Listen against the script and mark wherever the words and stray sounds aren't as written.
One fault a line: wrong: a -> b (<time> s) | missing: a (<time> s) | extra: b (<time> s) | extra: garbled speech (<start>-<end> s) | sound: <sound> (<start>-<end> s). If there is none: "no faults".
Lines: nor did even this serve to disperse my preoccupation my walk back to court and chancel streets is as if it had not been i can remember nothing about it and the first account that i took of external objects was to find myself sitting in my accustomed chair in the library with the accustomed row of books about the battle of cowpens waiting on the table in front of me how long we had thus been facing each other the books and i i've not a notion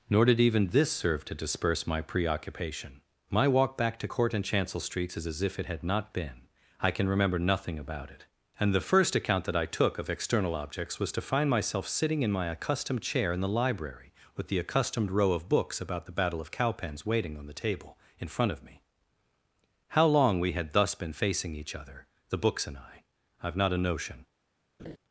sound: laugh (24.8-25.0 s)